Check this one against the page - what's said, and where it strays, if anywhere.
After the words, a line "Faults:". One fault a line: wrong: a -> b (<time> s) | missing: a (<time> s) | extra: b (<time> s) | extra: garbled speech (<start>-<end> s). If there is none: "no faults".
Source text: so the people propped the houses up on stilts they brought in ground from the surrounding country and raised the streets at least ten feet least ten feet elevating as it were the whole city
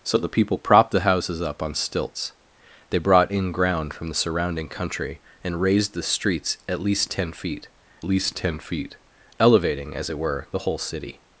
so the people propped the houses up on stilts they brought in ground from the surrounding country and raised the streets at least ten feet least ten feet elevating as it were the whole city
Faults:
no faults